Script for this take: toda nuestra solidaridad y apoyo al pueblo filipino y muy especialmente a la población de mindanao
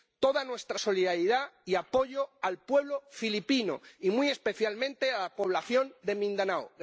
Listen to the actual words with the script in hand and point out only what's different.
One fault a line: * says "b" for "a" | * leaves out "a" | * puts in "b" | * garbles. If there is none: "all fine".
all fine